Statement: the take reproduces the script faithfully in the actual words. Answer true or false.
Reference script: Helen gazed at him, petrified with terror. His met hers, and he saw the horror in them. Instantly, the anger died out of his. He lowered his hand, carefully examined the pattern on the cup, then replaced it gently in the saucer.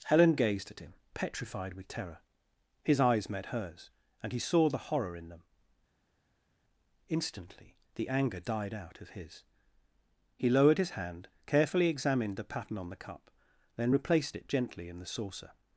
false